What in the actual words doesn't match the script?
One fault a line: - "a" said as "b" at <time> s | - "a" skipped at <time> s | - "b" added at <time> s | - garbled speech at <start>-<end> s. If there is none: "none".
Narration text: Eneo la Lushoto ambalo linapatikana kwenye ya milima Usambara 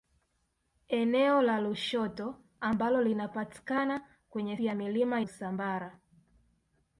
none